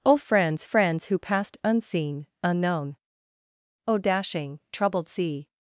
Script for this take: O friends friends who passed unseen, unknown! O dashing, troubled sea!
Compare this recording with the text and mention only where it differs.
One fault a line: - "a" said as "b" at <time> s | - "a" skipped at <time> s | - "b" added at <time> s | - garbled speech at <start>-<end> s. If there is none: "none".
none